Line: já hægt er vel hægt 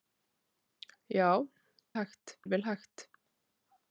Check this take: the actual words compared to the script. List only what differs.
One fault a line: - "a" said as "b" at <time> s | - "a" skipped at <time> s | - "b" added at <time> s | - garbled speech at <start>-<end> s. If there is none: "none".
none